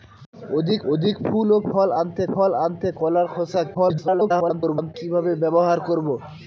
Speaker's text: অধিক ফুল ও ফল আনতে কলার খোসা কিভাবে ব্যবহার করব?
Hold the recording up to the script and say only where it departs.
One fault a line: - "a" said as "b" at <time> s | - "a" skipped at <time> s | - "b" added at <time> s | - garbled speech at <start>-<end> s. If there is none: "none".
- "অধিক" added at 0.9 s
- "ফল আনতে" added at 2.3 s
- garbled speech at 3.7-4.9 s